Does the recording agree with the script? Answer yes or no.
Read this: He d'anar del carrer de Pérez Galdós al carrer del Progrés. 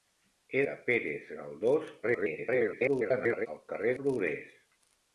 no